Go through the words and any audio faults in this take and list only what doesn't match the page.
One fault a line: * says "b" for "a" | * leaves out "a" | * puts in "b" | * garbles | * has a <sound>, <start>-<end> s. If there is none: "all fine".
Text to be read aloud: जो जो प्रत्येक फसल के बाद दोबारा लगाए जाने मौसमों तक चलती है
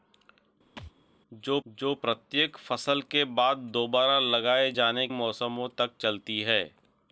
* has a thud, 0.8-0.9 s